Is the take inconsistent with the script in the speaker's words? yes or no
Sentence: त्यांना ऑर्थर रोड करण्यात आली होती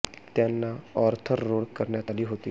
no